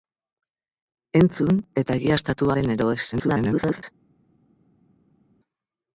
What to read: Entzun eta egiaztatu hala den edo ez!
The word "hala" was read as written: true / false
false